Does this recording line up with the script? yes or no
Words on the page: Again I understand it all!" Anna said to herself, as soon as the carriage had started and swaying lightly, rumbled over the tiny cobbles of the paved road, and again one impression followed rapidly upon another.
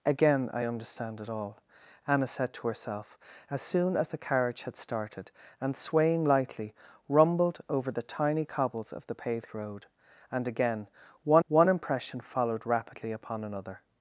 no